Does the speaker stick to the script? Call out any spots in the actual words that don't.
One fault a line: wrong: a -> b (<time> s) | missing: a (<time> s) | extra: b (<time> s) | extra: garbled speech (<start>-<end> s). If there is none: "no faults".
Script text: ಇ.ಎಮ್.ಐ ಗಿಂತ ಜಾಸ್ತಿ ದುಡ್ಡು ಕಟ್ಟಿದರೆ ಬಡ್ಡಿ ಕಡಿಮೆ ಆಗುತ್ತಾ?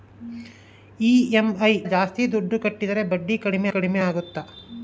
missing: ಗಿಂತ (1.7 s)
extra: ಕಡಿಮೆ (3.7 s)